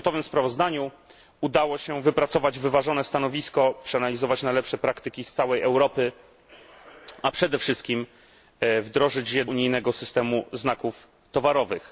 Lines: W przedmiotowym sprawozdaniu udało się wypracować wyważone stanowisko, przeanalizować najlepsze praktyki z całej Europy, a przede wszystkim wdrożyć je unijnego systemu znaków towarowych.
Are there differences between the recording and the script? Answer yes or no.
no